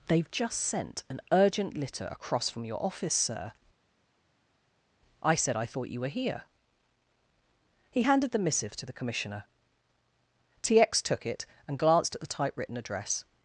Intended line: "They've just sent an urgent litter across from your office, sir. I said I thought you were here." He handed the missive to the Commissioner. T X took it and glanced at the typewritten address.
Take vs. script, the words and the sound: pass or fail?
pass